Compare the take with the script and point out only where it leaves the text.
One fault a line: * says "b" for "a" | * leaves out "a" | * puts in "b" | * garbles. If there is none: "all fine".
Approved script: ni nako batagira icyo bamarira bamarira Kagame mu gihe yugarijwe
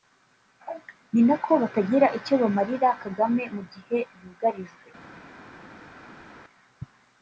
* leaves out "bamarira"